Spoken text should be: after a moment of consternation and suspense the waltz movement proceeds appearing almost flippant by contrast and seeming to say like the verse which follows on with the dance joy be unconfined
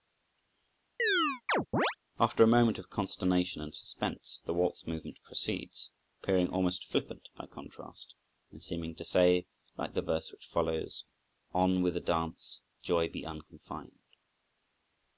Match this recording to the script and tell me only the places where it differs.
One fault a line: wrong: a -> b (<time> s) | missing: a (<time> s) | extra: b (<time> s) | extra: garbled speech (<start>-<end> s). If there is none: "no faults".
no faults